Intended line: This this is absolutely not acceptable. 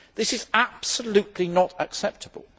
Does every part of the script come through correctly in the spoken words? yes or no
no